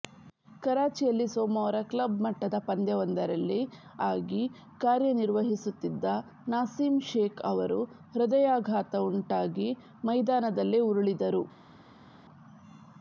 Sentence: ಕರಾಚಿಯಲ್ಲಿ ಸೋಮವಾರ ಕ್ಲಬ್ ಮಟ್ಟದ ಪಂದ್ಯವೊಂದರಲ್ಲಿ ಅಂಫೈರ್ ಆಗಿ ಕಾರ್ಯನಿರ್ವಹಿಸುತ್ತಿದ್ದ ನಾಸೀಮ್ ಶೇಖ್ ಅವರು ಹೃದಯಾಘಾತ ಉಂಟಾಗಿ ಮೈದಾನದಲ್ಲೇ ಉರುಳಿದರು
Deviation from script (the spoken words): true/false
true